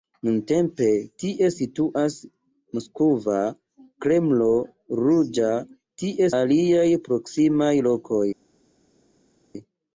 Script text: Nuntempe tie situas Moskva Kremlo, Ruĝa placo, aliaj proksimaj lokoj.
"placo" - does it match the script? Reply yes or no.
no